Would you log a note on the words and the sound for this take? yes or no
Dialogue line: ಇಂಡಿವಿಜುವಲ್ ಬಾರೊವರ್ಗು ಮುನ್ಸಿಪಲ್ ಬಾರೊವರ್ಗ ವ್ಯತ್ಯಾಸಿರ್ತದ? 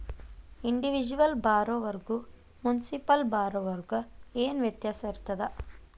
yes